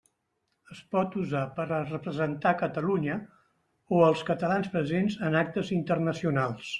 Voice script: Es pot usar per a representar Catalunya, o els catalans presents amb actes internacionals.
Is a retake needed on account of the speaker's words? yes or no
yes